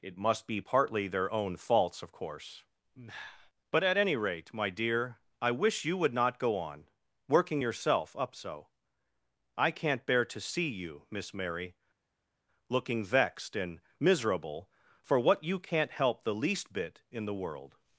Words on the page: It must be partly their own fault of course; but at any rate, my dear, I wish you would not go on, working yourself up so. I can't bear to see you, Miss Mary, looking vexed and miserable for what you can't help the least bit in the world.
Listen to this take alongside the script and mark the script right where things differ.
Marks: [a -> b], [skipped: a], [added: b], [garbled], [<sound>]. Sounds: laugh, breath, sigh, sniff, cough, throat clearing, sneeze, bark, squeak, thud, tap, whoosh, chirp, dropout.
It must be partly their own [fault -> faults] of course; but at any rate, my dear, I wish you would not go on, working yourself up so. I can't bear to see you, Miss Mary, looking vexed and miserable for what you can't help the least bit in the world.